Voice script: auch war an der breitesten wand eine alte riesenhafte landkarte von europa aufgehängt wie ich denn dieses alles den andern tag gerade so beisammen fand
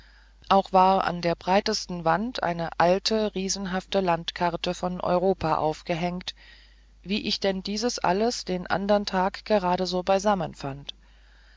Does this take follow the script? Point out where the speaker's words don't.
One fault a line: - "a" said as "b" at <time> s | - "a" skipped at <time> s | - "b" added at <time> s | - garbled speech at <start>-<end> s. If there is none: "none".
none